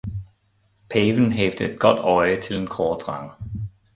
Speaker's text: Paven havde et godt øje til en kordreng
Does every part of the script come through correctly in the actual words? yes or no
yes